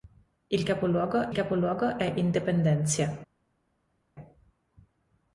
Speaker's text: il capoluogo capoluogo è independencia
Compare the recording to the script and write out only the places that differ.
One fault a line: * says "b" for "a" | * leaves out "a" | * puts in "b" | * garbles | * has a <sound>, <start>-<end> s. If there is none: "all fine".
all fine